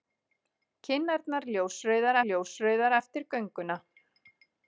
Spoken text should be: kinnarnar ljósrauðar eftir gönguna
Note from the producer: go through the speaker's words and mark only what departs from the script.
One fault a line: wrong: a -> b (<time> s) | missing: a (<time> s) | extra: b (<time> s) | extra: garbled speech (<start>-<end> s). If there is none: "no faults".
extra: ljósrauðar (2.3 s)